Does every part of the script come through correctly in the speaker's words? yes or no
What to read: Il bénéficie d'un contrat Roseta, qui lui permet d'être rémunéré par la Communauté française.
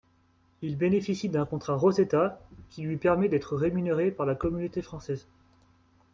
yes